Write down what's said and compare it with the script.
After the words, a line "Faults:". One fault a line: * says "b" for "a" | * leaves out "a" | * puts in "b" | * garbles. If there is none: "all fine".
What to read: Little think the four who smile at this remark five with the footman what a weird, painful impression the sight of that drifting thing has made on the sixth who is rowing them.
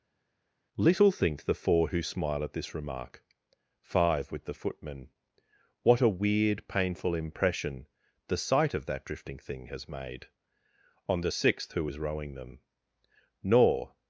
Little think the four who smile at this remark five with the footman what a weird, painful impression the sight of that drifting thing has made on the sixth who is rowing them. Nor
Faults:
* puts in "Nor"